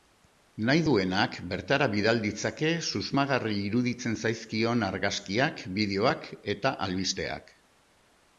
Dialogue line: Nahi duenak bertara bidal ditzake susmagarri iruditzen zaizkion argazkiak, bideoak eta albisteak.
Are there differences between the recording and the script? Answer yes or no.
no